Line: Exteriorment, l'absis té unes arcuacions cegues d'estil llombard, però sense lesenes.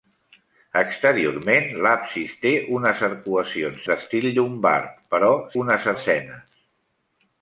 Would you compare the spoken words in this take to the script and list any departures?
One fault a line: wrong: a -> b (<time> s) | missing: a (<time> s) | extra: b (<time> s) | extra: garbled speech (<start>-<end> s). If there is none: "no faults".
missing: cegues (3.9 s)
wrong: sense -> unes (5.6 s)